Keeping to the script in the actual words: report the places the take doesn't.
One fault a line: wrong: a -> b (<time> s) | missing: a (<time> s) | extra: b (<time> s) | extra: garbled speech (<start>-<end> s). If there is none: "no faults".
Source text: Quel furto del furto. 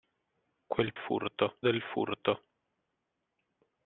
no faults